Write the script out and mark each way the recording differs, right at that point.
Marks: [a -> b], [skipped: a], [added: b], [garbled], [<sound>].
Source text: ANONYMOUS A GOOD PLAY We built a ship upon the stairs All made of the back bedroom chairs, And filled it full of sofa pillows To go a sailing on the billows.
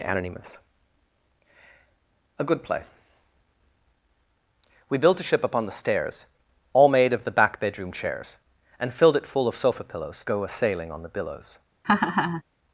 ANONYMOUS A GOOD PLAY We built a ship upon the stairs All made of the back bedroom chairs, And filled it full of sofa pillows [skipped: To] go a sailing on the billows. [laugh]